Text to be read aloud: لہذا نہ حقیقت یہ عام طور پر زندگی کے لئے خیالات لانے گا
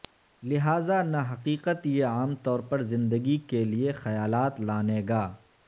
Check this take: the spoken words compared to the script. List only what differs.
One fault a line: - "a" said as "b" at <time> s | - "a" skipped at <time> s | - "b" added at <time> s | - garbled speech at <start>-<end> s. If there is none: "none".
none